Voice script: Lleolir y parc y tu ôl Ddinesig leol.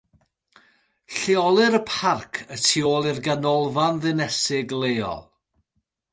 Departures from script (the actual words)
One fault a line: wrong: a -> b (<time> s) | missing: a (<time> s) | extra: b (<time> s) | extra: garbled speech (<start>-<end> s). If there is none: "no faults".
extra: i'r Ganolfan (3.1 s)